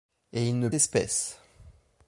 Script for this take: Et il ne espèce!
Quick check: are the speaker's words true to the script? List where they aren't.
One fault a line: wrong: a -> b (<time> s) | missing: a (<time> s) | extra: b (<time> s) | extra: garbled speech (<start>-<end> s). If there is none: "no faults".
no faults